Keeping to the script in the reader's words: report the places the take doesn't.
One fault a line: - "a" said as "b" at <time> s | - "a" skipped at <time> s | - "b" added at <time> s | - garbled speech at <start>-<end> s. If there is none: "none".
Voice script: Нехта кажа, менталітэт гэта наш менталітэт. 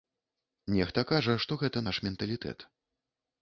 - "менталітэт" said as "што" at 1.4 s